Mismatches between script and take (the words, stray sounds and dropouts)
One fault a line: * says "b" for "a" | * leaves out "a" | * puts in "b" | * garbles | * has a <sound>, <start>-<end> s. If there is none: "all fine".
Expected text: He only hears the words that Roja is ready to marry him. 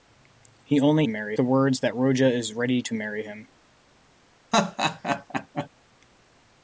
* says "marry" for "hears"
* has a laugh, 4.5-5.7 s